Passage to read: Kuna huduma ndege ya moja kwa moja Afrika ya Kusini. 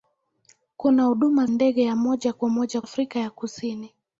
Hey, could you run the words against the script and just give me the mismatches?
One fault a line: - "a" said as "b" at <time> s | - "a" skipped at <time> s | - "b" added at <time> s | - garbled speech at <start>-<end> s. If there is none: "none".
none